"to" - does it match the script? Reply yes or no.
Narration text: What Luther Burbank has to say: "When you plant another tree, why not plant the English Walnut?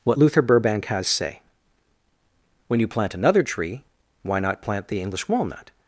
no